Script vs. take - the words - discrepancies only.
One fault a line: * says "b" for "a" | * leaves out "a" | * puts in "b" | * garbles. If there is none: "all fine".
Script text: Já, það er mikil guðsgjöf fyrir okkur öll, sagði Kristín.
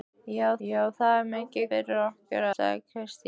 * puts in "já"
* leaves out "guðsgjöf"
* leaves out "öll"